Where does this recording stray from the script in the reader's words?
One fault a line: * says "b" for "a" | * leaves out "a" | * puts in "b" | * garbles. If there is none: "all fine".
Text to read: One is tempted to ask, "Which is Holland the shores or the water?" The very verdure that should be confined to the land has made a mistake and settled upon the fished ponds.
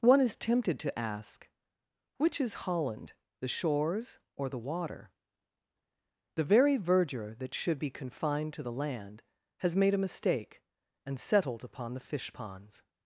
* says "fish" for "fished"